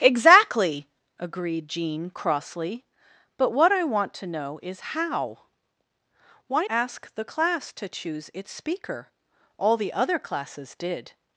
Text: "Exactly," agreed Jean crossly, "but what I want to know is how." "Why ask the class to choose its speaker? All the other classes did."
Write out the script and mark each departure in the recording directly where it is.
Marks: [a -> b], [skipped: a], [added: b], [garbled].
"Exactly," agreed Jean crossly, "but what I want to know is how." "Why ask the class to choose its speaker? All the other classes did."